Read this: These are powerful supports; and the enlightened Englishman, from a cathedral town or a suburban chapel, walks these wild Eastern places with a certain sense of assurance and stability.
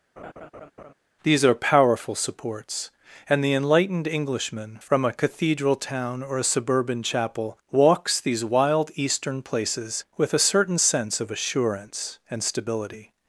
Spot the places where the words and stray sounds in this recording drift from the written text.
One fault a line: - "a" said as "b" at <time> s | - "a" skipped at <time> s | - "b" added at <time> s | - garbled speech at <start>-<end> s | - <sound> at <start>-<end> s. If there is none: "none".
- laugh at 0.2-0.9 s